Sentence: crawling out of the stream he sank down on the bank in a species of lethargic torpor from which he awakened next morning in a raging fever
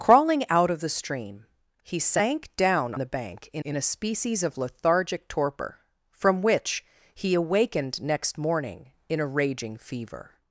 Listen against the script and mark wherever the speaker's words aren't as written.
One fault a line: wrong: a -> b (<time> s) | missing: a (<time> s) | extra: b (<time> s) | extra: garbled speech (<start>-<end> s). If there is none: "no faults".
missing: on (3.0 s)
extra: in (3.6 s)